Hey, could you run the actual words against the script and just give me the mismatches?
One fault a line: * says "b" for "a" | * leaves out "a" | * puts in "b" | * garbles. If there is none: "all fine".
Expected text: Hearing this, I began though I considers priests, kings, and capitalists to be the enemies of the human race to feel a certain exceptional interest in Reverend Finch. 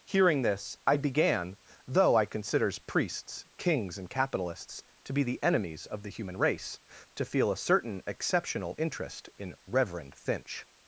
all fine